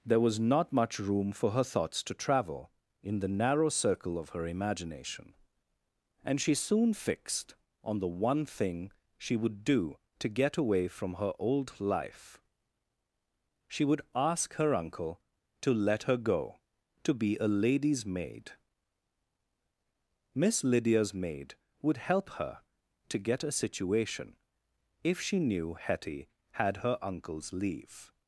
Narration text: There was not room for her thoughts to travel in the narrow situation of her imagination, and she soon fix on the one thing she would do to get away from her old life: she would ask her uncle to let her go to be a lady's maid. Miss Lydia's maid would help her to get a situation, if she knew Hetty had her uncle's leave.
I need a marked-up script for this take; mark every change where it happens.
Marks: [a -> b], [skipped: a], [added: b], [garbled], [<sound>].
There was not [added: much] room for her thoughts to travel in the narrow [situation -> circle] of her imagination, and she soon [fix -> fixed] on the one thing she would do to get away from her old life: she would ask her uncle to let her go to be a lady's maid. Miss Lydia's maid would help her to get a situation, if she knew Hetty had her uncle's leave.